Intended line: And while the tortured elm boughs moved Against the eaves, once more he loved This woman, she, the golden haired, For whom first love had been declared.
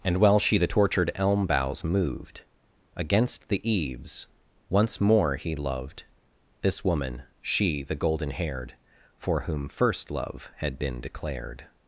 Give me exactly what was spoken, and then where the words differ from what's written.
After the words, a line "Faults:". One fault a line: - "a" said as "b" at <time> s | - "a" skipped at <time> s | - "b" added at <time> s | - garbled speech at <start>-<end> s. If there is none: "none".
And while she the tortured elm boughs moved Against the eaves, once more he loved This woman, she, the golden haired, For whom first love had been declared.
Faults:
- "she" added at 0.4 s